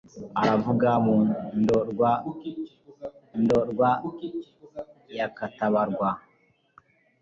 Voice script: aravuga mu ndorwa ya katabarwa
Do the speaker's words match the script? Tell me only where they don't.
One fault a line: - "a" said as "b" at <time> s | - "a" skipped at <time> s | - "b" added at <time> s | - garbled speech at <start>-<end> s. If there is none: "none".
- "ndorwa" added at 3.4 s